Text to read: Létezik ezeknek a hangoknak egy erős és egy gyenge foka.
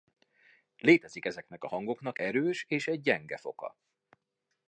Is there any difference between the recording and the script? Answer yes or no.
yes